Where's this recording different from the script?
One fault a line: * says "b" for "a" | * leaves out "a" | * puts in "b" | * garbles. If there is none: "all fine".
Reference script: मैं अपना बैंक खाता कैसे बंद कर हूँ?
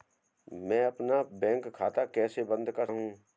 all fine